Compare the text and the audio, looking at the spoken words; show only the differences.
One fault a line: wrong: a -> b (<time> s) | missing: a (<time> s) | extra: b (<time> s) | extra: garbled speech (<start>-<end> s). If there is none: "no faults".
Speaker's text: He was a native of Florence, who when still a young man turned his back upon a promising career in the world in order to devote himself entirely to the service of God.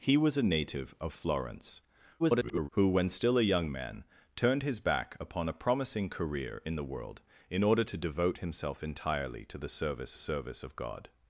extra: garbled speech (2.2-2.7 s)
extra: service (10.2 s)